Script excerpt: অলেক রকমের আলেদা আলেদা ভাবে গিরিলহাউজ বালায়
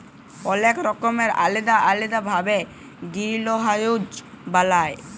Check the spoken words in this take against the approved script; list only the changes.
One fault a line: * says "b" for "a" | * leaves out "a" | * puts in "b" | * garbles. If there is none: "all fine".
all fine